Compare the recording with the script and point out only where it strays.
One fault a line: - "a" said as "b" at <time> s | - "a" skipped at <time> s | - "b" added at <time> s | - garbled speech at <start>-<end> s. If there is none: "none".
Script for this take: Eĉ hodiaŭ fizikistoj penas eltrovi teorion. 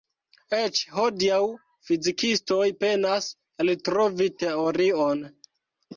none